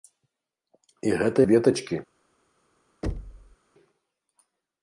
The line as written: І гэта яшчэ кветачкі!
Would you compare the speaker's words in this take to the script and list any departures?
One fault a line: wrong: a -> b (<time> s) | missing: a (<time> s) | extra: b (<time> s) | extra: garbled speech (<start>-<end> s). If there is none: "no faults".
missing: яшчэ (1.4 s)